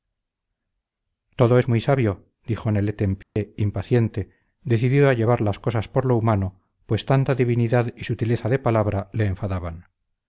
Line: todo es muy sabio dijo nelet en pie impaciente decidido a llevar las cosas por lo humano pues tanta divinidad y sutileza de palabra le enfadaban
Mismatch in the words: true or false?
false